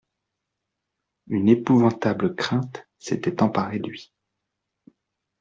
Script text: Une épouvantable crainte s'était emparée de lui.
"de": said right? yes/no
no